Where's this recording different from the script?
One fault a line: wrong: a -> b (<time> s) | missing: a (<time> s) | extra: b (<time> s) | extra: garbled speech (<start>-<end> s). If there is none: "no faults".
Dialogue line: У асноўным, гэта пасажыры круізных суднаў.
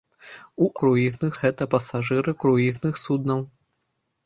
wrong: асноўным -> круізных (0.8 s)